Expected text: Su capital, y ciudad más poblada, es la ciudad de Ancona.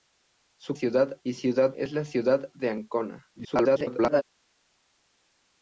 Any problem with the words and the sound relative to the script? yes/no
yes